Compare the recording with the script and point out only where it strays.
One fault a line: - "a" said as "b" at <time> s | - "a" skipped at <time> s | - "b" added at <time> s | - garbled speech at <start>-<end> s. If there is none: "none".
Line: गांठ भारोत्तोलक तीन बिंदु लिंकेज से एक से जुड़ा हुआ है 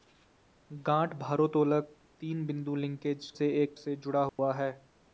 none